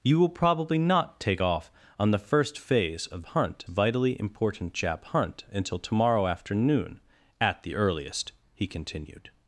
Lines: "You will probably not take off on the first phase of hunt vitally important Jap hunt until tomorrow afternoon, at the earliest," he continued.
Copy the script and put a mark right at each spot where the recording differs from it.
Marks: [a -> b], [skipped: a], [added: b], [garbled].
"You will probably not take off on the first phase of hunt vitally important Jap hunt until tomorrow afternoon, at the earliest," he continued.